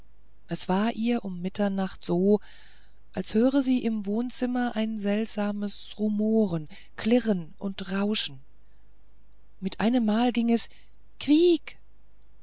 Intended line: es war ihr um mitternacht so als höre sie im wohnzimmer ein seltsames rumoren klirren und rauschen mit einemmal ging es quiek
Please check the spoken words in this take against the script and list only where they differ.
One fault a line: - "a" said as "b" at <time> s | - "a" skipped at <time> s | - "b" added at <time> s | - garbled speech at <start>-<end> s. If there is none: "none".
none